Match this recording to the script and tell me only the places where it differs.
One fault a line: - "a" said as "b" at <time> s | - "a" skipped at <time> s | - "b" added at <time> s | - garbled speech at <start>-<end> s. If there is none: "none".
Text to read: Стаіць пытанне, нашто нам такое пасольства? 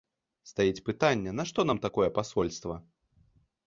none